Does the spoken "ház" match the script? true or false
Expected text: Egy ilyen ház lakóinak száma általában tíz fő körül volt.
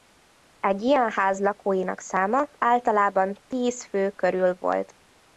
true